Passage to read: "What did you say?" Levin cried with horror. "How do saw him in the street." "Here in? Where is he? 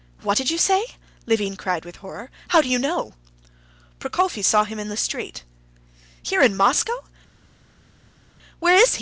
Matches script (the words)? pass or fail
fail